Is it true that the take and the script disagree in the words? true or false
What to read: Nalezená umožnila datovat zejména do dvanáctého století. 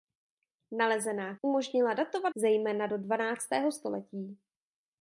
false